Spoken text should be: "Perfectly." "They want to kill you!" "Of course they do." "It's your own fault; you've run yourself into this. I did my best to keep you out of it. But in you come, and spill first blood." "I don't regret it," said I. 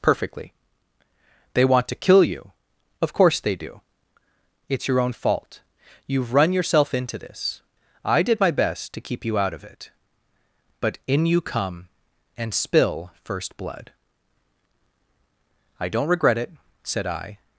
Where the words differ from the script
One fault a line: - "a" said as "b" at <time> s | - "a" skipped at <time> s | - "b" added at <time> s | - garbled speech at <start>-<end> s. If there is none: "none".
none